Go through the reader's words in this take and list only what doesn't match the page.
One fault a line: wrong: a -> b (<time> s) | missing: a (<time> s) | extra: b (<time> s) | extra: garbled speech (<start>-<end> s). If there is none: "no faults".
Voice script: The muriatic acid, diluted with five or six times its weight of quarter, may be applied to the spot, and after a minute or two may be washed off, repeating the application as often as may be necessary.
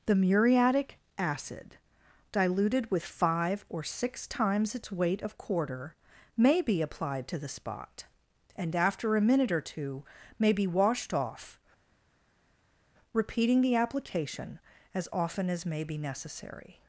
no faults